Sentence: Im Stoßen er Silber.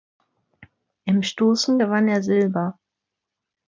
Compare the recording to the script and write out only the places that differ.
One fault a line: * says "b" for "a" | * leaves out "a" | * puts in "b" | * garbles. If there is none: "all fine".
* puts in "gewann"